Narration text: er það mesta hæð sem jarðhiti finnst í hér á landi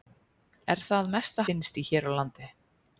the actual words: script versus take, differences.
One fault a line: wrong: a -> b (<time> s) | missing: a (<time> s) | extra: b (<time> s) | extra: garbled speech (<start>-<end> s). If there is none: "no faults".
missing: hæð sem jarðhiti (1.4 s)